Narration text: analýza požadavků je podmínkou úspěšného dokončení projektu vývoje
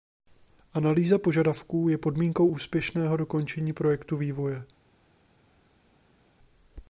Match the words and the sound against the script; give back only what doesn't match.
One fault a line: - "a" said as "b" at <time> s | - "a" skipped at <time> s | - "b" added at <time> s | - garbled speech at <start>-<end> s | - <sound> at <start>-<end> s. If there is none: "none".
none